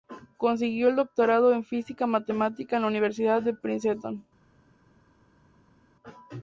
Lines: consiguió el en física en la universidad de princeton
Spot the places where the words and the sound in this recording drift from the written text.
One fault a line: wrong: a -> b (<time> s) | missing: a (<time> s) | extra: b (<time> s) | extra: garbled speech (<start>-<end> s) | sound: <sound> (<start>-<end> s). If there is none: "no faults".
extra: doctorado (0.9 s)
extra: matemática (2.1 s)